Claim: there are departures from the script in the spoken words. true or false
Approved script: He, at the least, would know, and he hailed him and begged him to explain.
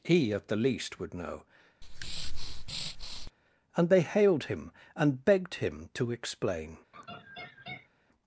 true